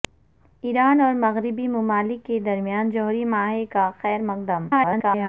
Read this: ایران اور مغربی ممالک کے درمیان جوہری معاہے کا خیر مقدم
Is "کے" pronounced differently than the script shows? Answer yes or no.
no